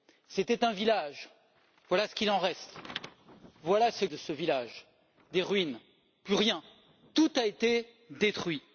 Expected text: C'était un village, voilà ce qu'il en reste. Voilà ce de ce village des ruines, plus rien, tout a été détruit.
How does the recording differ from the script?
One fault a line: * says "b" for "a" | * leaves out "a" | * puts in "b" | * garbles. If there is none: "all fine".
all fine